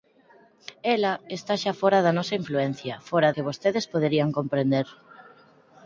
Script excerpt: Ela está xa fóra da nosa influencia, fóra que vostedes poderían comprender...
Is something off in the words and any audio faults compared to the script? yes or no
no